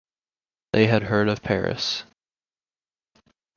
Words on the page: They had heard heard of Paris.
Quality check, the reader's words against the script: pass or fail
fail